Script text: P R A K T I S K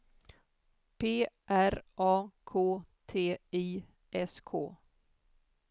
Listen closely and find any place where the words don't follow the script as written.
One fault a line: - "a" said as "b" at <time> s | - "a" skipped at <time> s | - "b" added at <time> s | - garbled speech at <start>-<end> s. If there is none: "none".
none